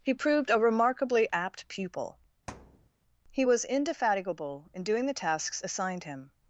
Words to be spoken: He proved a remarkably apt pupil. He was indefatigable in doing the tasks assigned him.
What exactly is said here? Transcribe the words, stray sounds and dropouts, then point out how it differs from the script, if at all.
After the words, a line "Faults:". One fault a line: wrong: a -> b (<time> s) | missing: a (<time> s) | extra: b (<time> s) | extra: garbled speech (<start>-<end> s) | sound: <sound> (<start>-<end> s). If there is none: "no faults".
He proved a remarkably apt pupil. He was indefatigable in doing the tasks assigned him.
Faults:
sound: thud (2.5-2.9 s)